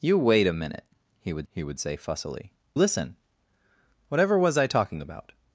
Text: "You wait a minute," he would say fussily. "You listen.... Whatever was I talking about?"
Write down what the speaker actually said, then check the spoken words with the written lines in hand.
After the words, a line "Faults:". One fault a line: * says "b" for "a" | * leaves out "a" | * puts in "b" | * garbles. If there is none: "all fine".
"You wait a minute," he would he would say fussily. "Listen.... Whatever was I talking about?"
Faults:
* puts in "he would"
* leaves out "You"